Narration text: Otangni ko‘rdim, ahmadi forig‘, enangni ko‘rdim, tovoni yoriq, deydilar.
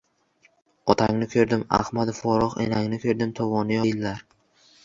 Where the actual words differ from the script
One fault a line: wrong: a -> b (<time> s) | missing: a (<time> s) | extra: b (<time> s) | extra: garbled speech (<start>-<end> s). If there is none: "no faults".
missing: yoriq (3.8 s)